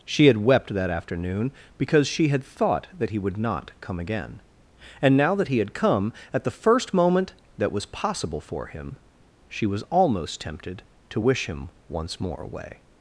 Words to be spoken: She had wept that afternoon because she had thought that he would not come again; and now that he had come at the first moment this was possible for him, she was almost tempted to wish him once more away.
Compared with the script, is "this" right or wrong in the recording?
wrong